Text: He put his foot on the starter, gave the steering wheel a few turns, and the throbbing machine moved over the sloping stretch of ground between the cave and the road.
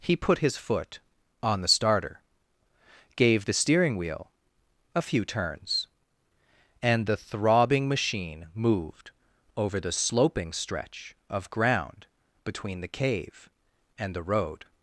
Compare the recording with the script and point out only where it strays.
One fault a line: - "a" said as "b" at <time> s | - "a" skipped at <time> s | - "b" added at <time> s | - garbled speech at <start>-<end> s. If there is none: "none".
none